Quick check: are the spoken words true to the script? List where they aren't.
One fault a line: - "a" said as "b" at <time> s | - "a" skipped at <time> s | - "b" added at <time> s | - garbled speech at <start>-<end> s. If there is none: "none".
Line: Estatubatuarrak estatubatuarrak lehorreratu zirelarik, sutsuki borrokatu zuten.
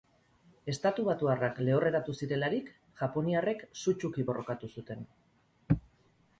- "estatubatuarrak" skipped at 1.6 s
- "japoniarrek" added at 3.0 s